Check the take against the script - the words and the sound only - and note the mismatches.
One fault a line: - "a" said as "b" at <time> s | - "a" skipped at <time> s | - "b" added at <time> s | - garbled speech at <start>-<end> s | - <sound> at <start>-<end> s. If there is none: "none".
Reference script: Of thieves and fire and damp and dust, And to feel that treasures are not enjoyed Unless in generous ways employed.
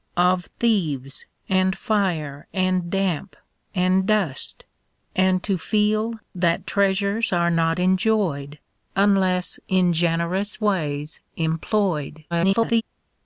- garbled speech at 12.3-12.8 s